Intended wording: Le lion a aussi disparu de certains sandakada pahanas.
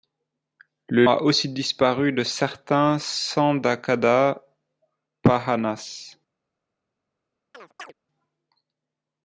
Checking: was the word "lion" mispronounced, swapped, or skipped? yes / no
yes